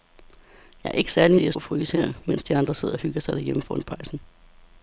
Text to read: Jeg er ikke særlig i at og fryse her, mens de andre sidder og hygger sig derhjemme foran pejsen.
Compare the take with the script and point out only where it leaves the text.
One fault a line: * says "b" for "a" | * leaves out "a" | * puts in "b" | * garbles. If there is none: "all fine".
all fine